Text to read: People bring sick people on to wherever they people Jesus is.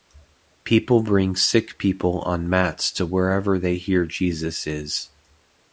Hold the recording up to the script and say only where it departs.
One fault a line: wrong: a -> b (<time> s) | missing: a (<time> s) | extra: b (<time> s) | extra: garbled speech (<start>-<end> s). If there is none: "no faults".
extra: mats (2.5 s)
wrong: people -> hear (3.8 s)